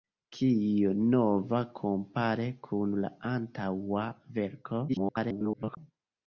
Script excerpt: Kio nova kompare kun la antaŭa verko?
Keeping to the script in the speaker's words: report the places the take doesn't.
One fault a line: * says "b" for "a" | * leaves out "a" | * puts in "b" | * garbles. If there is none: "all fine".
* garbles